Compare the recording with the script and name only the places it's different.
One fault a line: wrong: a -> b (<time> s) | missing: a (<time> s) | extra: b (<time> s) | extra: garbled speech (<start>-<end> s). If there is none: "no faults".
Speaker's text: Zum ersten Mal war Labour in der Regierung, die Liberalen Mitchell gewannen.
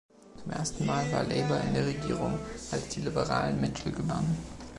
extra: als (2.7 s)